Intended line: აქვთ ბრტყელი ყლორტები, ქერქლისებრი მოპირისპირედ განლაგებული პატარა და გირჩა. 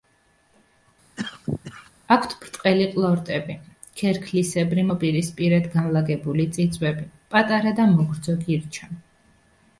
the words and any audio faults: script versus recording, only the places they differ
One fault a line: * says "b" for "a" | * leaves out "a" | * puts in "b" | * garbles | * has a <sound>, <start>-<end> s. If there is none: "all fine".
* has a cough, 1.2-1.9 s
* puts in "წიწვები"
* puts in "მოგრძო"